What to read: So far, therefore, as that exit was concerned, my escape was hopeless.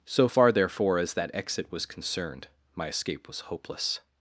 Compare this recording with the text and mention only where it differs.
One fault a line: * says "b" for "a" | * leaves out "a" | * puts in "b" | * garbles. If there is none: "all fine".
all fine